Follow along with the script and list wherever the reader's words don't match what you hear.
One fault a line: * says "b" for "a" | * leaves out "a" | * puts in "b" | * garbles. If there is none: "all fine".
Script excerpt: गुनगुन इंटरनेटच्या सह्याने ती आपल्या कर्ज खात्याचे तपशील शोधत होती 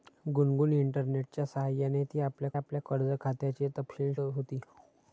* puts in "आपल्या"
* leaves out "शोधत"